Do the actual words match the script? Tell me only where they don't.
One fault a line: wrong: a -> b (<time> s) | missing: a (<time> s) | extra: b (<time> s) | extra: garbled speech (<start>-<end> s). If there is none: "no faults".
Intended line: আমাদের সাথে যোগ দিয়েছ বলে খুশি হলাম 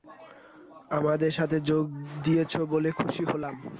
no faults